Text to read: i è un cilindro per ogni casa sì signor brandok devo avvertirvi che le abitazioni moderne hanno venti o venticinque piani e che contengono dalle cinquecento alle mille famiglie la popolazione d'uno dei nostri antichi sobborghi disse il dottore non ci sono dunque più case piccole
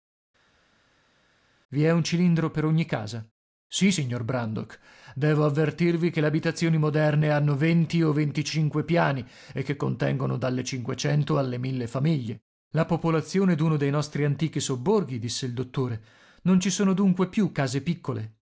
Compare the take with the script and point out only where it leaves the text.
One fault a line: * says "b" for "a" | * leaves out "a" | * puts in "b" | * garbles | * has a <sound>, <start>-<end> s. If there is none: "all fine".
all fine